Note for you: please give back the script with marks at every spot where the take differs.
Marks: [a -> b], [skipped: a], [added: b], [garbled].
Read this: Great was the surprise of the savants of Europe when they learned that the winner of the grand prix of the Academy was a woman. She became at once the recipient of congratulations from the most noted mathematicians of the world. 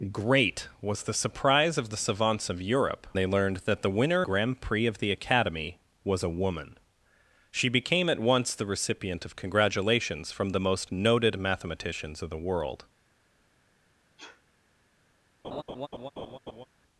Great was the surprise of the savants of Europe [skipped: when] they learned that the winner [skipped: of the] grand prix of the Academy was a woman. She became at once the recipient of congratulations from the most noted mathematicians of the world.